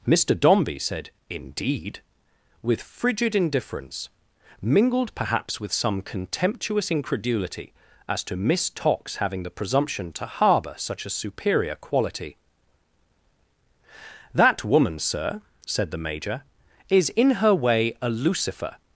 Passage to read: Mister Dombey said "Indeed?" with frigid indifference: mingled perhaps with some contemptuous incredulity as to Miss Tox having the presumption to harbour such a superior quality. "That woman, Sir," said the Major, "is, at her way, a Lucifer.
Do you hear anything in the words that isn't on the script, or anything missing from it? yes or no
yes